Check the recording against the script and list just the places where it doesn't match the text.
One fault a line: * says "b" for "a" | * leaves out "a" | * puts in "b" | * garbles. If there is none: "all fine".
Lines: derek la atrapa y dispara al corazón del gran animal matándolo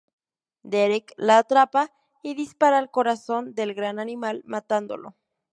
all fine